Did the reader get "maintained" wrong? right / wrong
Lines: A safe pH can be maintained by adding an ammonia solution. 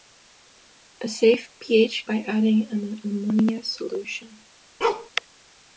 wrong